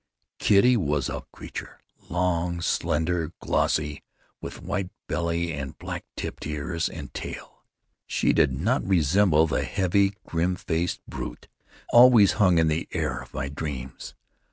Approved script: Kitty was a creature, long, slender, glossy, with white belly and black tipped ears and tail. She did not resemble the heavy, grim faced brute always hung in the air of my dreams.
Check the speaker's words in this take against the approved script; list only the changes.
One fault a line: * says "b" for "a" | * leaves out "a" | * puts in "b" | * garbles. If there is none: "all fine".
all fine